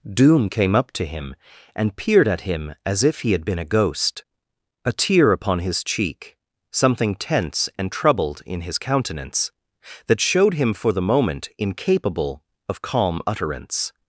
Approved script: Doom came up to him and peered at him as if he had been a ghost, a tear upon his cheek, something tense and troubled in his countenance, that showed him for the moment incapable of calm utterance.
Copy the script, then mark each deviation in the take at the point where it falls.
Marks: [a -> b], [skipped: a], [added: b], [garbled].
Doom came up to him and peered at him as if he had been a ghost, a tear upon his cheek, something tense and troubled in his countenance, that showed him for the moment incapable of calm utterance.